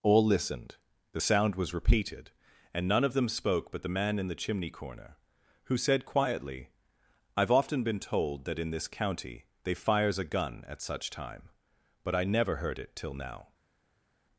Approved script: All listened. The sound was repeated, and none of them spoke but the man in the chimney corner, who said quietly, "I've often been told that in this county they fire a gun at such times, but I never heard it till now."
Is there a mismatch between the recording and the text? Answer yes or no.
yes